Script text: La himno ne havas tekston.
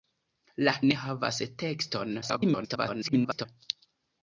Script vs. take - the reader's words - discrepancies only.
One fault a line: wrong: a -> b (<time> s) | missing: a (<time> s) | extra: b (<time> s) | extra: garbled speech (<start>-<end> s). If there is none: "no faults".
missing: himno (0.7 s)
extra: garbled speech (2.2-3.5 s)